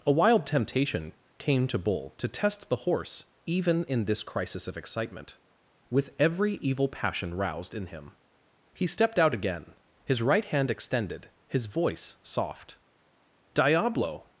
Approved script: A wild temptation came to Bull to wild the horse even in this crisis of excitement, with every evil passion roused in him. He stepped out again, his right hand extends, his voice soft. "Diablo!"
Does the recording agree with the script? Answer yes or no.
no